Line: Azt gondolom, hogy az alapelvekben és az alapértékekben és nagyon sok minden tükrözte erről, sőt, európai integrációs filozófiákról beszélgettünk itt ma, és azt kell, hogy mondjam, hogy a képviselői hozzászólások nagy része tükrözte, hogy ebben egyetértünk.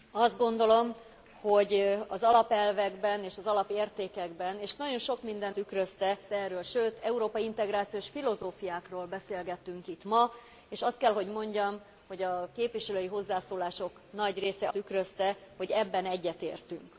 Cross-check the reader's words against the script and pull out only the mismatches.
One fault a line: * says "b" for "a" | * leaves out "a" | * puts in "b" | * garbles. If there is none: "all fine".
all fine